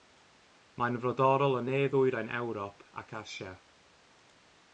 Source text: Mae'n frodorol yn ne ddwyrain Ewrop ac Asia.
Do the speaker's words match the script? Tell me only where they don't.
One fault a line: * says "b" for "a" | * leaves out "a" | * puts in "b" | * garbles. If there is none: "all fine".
all fine